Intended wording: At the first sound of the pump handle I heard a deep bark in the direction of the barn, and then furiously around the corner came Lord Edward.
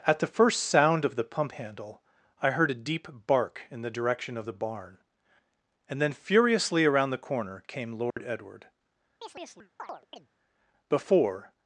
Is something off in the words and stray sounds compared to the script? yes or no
yes